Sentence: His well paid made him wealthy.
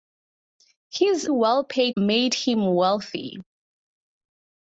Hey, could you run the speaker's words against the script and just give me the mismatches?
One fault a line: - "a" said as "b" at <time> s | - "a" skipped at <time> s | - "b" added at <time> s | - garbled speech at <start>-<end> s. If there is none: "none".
none